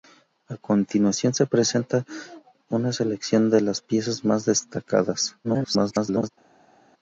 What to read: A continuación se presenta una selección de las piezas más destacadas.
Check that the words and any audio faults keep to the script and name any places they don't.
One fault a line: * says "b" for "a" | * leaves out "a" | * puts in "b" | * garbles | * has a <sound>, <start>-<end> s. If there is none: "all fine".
* garbles